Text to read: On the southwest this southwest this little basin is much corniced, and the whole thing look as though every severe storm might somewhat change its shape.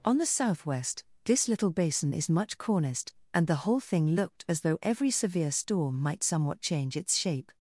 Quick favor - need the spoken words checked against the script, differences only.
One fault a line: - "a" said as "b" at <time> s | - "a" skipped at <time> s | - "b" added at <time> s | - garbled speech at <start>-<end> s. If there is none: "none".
- "southwest this" skipped at 1.5 s
- "look" said as "looked" at 4.2 s